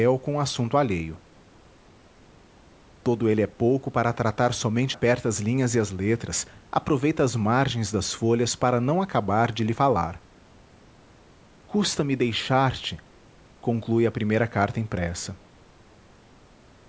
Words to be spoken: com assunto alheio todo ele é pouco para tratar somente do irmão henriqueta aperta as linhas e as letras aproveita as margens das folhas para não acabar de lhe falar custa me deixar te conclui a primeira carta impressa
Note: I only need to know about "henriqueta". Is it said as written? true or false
false